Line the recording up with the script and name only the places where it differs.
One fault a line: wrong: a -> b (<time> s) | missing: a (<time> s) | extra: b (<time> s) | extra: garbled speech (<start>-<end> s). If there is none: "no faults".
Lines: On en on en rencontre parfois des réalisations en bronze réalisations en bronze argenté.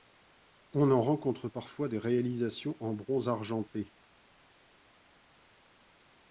missing: on en (1.0 s)
missing: réalisations en bronze (3.3 s)